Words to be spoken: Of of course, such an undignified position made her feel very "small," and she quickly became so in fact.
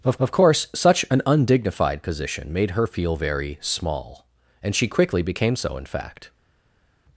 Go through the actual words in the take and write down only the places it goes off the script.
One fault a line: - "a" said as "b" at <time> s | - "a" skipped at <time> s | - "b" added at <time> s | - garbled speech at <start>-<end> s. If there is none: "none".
none